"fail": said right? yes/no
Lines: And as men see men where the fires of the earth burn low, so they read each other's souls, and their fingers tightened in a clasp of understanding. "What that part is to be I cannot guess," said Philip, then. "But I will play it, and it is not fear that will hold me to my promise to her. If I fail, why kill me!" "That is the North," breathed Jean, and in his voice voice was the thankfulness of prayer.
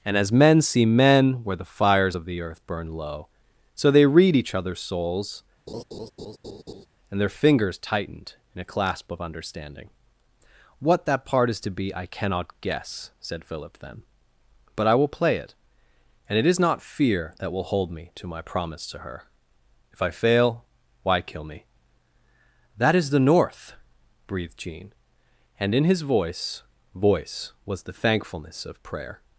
yes